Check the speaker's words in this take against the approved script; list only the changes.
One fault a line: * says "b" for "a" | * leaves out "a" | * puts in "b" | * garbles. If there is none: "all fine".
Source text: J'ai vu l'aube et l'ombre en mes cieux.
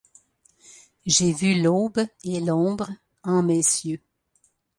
all fine